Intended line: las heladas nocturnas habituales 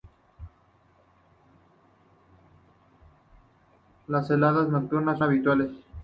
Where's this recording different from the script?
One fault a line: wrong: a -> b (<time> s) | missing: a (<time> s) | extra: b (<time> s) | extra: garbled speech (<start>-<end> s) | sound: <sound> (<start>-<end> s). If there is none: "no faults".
no faults